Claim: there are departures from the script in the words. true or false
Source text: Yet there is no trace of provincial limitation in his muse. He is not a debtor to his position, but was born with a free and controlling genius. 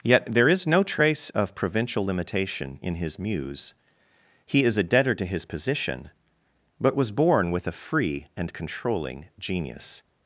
true